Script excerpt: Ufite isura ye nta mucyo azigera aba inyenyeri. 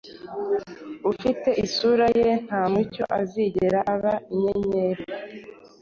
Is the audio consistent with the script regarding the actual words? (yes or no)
yes